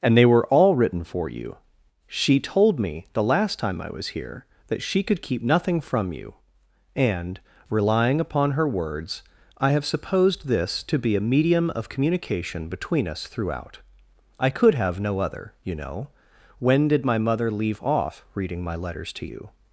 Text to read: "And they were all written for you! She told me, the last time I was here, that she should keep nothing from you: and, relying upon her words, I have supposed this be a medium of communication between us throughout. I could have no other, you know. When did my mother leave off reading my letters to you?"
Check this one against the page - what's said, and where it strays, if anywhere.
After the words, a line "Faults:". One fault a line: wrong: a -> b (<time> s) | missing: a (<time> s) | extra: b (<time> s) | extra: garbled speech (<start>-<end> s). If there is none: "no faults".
"And they were all written for you! She told me, the last time I was here, that she could keep nothing from you: and, relying upon her words, I have supposed this to be a medium of communication between us throughout. I could have no other, you know. When did my mother leave off reading my letters to you?"
Faults:
wrong: should -> could (5.0 s)
extra: to (10.8 s)